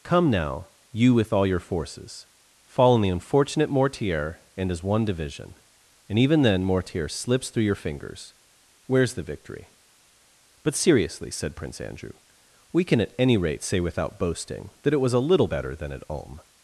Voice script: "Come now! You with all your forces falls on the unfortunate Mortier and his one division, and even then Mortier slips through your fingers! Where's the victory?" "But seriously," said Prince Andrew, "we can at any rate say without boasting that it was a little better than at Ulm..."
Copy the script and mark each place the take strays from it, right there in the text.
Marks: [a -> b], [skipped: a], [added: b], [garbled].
"Come now! You with all your forces [falls -> fall] on the unfortunate Mortier and his one division, and even then Mortier slips through your fingers! Where's the victory?" "But seriously," said Prince Andrew, "we can at any rate say without boasting that it was a little better than at Ulm..."